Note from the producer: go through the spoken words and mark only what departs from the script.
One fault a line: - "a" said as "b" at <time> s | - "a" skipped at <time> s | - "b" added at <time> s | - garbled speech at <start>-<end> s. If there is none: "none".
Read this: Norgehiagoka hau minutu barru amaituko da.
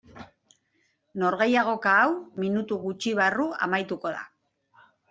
- "gutxi" added at 2.9 s